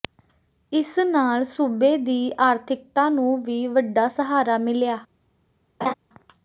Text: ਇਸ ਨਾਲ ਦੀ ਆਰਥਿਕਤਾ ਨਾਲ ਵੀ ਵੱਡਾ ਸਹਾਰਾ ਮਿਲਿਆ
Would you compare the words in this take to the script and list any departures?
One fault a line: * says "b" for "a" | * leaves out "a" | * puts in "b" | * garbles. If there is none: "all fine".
* puts in "ਸੂਬੇ"
* says "ਨੂੰ" for "ਨਾਲ"